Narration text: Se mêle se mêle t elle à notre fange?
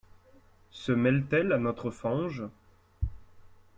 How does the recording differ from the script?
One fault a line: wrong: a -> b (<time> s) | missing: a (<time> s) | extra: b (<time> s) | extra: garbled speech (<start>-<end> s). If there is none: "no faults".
missing: se mêle (1.3 s)